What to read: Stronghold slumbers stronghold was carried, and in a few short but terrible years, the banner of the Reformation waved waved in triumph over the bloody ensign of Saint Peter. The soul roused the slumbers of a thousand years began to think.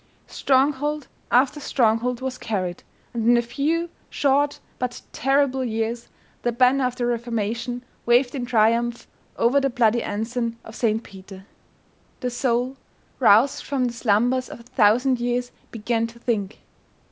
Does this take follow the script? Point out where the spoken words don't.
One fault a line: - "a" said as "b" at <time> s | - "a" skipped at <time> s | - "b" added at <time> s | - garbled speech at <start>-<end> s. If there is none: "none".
- "slumbers" said as "after" at 1.3 s
- "waved" skipped at 8.3 s
- "from" added at 13.6 s